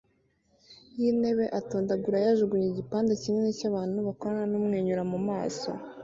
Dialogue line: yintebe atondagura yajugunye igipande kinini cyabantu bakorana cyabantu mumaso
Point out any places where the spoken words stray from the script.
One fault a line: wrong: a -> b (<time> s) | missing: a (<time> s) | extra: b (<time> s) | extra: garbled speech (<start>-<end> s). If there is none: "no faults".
wrong: cyabantu -> numwenyura (4.5 s)